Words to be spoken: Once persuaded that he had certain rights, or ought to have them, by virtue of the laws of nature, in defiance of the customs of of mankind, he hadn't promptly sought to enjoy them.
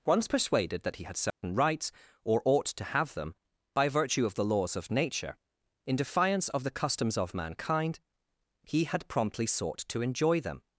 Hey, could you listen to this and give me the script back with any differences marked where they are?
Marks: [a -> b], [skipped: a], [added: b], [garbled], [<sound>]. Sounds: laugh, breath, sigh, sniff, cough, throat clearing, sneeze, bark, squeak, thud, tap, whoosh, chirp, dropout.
Once persuaded that he had certain [dropout] rights, or ought to have them, by virtue of the laws of nature, in defiance of the customs of [skipped: of] mankind, he [hadn't -> had] promptly sought to enjoy them.